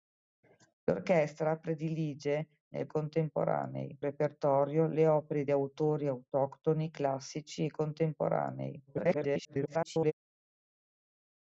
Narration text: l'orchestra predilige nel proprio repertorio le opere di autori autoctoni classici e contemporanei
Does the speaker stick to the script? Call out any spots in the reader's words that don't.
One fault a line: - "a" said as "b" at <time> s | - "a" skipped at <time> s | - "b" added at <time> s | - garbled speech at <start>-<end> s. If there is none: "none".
- "proprio" said as "contemporanei" at 2.9 s
- garbled speech at 8.9-10.1 s